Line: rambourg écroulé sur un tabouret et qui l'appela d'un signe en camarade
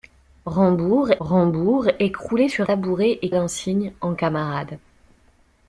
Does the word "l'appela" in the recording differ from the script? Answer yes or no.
yes